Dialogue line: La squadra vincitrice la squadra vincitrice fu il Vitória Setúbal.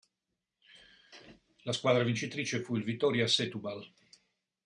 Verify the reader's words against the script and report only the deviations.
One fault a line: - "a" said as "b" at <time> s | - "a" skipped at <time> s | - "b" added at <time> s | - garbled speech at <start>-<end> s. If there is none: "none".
- "la squadra vincitrice" skipped at 2.6 s